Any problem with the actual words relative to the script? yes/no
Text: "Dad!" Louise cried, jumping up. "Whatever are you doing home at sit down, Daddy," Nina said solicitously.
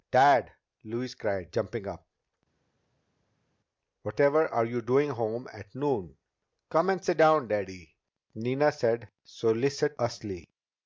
yes